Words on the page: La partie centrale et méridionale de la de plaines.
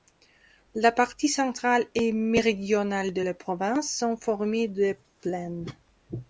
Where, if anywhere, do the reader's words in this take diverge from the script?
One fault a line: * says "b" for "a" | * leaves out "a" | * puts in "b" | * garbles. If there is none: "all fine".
* puts in "province sont formées"